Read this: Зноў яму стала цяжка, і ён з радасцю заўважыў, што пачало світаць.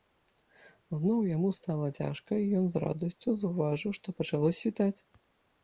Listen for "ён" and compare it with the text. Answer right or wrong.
right